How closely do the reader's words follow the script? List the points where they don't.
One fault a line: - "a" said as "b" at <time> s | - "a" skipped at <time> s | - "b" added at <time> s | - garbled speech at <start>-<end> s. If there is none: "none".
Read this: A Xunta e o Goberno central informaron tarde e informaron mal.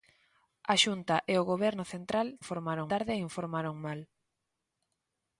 none